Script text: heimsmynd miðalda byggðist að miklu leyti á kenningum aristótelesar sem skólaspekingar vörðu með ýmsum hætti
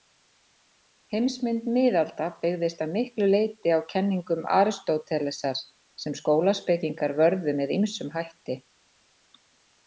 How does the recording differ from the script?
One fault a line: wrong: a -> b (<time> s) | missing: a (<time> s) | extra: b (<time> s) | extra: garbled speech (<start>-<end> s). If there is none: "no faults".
no faults